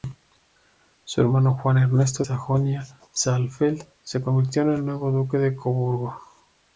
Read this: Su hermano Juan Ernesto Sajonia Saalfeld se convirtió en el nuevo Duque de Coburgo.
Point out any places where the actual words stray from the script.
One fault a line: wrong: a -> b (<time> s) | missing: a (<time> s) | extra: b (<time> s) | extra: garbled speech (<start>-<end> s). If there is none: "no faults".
no faults